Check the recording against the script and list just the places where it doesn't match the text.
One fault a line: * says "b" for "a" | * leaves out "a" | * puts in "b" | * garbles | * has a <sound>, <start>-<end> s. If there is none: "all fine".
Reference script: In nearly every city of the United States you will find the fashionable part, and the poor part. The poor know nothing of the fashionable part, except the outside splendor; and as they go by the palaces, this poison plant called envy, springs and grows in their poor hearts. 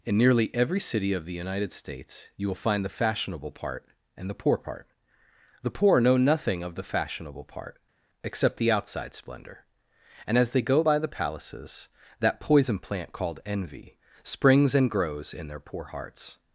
* says "that" for "this"